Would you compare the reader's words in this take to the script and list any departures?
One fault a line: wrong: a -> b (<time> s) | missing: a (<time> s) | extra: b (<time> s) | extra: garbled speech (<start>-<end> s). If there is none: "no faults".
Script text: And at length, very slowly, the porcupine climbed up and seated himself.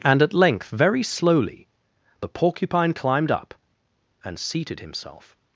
no faults